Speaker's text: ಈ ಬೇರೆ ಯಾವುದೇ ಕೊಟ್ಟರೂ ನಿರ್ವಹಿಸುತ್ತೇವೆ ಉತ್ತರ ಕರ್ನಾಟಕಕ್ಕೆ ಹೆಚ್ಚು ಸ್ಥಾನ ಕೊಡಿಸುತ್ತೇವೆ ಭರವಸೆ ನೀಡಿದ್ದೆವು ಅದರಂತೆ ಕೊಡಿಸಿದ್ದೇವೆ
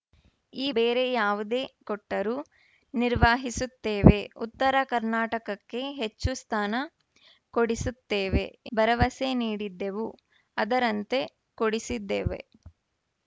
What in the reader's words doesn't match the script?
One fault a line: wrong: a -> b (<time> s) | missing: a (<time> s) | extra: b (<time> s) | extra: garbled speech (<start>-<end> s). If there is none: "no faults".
no faults